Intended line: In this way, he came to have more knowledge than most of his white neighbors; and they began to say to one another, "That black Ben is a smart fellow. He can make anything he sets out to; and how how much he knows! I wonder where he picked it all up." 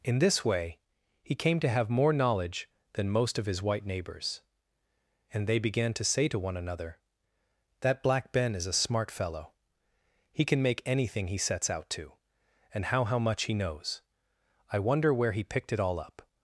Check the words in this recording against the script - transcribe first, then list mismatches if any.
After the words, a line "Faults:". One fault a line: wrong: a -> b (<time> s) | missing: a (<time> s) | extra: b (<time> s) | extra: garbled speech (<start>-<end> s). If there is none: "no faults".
In this way, he came to have more knowledge than most of his white neighbors; and they began to say to one another, "That black Ben is a smart fellow. He can make anything he sets out to; and how how much he knows! I wonder where he picked it all up."
Faults:
no faults